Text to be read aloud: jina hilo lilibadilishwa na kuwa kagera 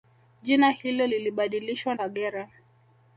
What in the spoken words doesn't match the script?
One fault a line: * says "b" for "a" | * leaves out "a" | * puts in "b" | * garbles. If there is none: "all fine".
* leaves out "na kuwa"